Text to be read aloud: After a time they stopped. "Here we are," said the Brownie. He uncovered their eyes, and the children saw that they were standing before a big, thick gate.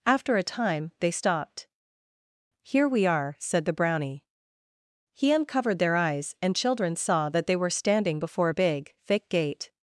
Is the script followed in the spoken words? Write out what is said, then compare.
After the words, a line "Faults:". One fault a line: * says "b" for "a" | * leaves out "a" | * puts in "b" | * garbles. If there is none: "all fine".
After a time they stopped. "Here we are," said the Brownie. He uncovered their eyes, and children saw that they were standing before a big, thick gate.
Faults:
* leaves out "the"